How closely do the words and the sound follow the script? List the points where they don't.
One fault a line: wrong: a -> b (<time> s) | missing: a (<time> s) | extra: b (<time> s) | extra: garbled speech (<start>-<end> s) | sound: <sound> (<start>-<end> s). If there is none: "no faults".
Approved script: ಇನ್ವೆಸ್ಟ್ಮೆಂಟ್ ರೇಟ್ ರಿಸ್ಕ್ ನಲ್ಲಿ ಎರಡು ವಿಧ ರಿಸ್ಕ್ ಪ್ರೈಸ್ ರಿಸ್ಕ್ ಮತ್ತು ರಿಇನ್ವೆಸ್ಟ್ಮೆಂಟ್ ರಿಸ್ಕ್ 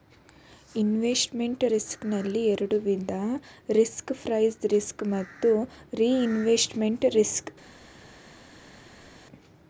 missing: ರೇಟ್ (1.6 s)